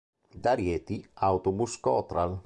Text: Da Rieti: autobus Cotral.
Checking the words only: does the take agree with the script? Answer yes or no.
yes